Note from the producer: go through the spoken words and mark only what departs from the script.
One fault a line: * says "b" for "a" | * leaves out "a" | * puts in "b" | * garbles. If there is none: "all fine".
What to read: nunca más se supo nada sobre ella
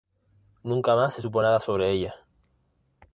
all fine